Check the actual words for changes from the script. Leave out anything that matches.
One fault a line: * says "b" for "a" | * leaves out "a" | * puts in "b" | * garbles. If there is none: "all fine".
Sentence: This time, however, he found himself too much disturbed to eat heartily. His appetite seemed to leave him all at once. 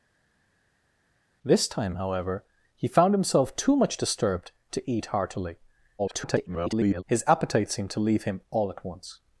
* garbles